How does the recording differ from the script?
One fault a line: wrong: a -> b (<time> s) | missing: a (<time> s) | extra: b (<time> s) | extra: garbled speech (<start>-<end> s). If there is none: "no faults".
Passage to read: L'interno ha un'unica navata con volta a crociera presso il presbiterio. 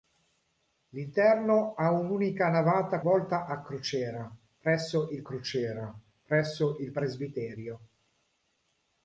missing: con (3.0 s)
extra: crociera presso il (5.2 s)